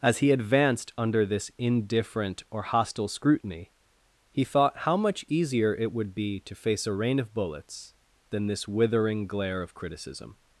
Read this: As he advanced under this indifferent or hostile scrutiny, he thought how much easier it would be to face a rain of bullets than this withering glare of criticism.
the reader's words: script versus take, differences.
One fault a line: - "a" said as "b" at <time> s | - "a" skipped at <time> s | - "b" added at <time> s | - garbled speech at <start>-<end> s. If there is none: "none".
none